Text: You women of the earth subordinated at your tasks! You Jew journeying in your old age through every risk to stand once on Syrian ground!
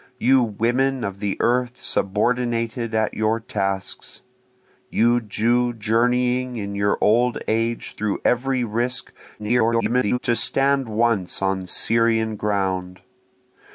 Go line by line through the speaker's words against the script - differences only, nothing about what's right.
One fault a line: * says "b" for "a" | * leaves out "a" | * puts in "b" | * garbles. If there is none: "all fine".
* garbles